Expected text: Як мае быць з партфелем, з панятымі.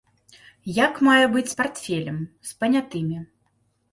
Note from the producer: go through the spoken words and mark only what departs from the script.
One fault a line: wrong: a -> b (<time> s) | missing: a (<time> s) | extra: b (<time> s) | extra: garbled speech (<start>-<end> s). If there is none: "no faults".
no faults